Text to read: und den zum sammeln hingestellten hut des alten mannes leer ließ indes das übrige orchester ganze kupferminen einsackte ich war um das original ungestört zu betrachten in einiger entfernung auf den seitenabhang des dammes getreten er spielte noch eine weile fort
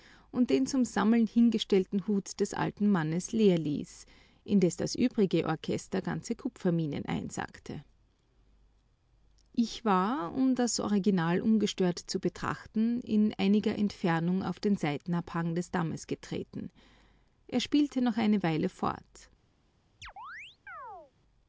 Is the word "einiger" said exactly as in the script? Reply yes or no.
yes